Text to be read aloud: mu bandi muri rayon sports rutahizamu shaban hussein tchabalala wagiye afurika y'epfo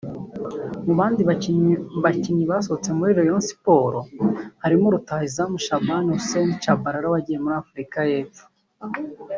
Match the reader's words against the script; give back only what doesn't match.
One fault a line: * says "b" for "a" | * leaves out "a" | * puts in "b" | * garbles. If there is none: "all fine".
* puts in "bakinnyi basohotse"
* puts in "harimo"
* puts in "muri"